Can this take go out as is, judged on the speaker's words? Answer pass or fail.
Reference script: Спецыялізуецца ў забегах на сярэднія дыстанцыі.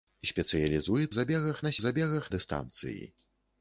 fail